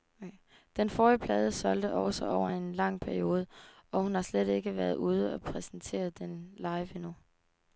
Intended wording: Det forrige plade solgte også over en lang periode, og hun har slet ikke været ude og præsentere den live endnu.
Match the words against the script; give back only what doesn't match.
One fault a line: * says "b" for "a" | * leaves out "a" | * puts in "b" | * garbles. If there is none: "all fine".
* says "Den" for "Det"